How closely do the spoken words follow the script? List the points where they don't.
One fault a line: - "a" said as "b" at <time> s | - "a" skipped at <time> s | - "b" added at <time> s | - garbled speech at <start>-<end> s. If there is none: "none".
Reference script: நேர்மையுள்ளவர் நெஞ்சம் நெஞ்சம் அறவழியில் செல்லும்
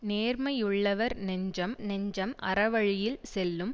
none